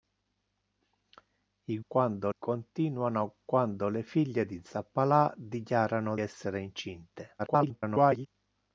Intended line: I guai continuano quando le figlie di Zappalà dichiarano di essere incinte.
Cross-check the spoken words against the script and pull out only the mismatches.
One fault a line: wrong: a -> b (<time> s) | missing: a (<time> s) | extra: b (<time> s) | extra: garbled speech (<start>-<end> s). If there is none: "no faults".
wrong: guai -> quando (1.9 s)
missing: di (6.2 s)
extra: garbled speech (7.4-8.3 s)